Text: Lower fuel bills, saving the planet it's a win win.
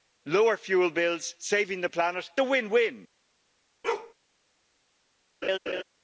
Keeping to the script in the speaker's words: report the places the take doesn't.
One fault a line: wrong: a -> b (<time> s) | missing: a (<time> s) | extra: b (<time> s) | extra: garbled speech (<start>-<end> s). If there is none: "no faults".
missing: it's (2.3 s)